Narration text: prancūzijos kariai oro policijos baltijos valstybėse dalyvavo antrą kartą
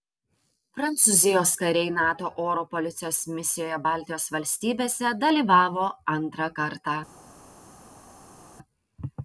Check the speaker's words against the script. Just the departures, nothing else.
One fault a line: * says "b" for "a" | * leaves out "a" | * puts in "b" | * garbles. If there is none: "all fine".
* puts in "nato"
* puts in "misijoje"